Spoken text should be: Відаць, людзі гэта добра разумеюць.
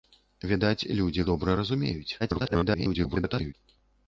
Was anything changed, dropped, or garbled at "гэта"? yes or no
yes